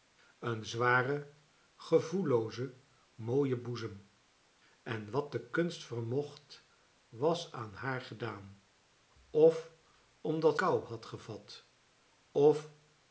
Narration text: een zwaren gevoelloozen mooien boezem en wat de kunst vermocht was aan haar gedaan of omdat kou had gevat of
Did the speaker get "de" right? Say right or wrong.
right